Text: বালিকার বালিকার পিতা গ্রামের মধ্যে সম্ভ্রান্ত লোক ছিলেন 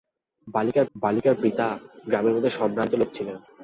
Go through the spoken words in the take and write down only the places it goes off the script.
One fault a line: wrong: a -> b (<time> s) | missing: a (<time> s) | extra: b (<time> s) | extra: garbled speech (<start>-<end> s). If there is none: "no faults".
no faults